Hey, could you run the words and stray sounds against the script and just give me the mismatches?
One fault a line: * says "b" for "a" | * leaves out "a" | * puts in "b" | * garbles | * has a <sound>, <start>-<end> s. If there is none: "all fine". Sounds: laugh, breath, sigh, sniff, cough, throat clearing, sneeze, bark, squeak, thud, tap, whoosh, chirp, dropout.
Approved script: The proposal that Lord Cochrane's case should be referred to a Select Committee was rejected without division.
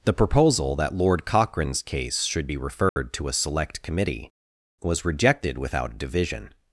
* has a dropout, 2.9-3.0 s